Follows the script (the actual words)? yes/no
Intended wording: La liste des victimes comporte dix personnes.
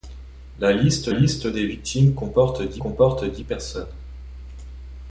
no